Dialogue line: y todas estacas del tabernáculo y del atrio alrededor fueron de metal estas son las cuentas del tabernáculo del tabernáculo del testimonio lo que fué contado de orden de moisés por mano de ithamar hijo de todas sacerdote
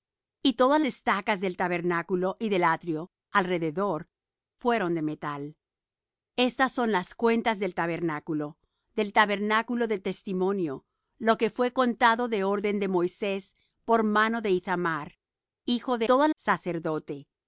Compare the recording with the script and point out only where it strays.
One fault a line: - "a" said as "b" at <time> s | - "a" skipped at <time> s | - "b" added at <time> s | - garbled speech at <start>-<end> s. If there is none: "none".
none